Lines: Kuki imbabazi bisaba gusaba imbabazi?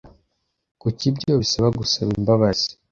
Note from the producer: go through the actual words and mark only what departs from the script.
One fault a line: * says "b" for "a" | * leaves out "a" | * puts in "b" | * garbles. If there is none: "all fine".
* says "ibyo" for "imbabazi"